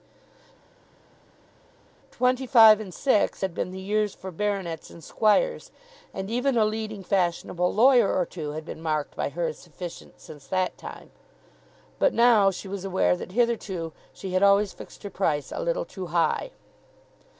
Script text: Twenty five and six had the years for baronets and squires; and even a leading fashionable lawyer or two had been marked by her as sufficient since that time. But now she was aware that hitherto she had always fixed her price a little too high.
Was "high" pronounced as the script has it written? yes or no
yes